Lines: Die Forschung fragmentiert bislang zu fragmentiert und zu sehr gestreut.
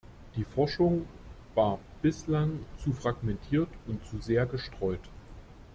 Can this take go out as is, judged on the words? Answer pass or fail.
fail